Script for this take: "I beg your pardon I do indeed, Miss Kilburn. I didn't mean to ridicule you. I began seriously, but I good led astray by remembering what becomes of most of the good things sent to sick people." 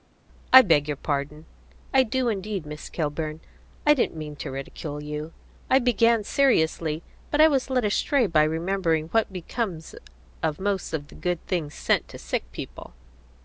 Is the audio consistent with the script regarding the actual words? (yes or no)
no